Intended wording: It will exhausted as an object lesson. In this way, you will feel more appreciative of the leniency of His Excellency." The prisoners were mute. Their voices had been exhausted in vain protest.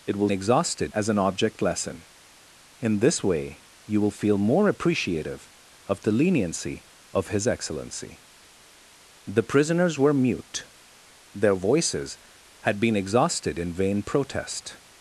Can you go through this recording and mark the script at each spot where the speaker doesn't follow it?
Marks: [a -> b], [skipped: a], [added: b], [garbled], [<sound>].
It will exhausted as an object lesson. In this way, you will feel more appreciative of the leniency of His Excellency." The prisoners were mute. Their voices had been exhausted in vain protest.